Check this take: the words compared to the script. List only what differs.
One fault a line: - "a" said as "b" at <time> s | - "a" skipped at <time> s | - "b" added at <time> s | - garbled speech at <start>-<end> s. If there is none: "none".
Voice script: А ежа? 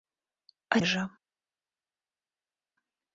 none